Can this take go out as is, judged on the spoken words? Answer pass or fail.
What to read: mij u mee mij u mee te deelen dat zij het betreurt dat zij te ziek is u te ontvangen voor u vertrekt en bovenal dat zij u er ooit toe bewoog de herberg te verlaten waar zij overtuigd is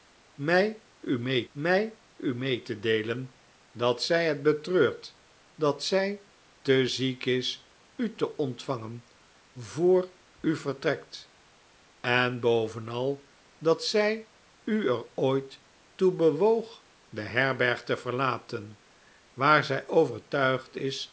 pass